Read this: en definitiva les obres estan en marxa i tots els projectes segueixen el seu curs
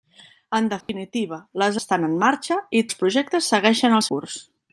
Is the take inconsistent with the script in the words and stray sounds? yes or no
yes